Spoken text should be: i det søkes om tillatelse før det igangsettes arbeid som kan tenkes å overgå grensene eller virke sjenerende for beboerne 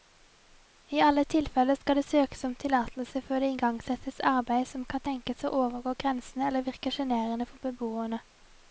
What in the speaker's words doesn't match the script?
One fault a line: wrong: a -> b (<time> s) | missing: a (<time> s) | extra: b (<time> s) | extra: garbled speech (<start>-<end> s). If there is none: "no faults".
extra: alle tilfeller skal (1.1 s)